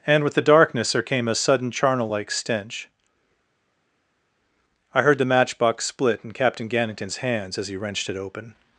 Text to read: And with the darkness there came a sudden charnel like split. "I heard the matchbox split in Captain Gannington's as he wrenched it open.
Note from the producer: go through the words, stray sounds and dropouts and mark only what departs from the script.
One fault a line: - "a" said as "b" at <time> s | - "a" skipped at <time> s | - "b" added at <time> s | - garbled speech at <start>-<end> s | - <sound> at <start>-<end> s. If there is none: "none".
- "split" said as "stench" at 2.3 s
- "hands" added at 7.2 s